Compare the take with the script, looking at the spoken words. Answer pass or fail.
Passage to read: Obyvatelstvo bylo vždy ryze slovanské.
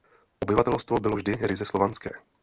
pass